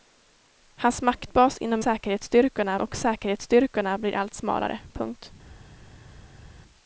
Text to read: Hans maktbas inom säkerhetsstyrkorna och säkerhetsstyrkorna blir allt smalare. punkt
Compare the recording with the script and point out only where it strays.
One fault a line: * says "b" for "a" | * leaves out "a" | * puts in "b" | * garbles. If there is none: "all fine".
all fine